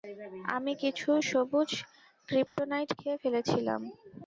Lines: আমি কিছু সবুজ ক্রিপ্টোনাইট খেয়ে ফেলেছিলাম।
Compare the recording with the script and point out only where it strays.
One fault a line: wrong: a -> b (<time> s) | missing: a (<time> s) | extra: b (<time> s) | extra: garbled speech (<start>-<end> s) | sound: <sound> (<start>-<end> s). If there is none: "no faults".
sound: dropout (2.5-2.6 s)